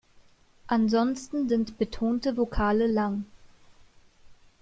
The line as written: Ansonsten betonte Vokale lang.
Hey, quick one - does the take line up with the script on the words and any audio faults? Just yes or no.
no